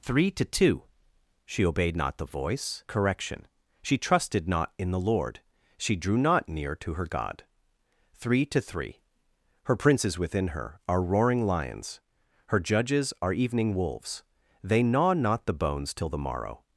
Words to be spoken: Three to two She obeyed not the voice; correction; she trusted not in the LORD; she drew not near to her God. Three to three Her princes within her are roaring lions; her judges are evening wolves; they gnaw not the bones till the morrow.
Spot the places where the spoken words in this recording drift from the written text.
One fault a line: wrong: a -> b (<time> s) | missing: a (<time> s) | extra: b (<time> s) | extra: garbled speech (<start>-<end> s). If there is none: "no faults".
no faults